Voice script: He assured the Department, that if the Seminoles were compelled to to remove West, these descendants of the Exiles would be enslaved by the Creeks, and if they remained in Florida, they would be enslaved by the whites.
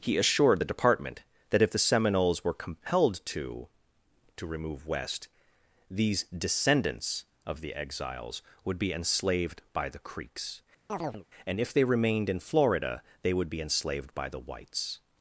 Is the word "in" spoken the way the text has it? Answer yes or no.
yes